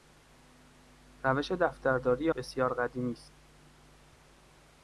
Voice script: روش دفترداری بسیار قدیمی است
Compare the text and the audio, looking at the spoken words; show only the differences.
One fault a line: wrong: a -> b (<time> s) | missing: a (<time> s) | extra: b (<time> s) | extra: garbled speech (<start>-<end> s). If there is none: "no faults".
no faults